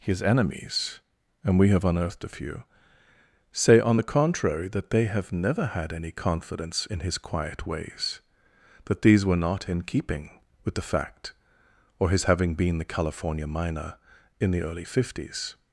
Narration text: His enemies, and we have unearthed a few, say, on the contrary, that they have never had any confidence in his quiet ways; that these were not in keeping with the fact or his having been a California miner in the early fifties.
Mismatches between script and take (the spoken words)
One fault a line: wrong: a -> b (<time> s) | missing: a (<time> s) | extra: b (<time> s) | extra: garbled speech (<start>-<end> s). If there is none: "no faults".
wrong: a -> the (12.8 s)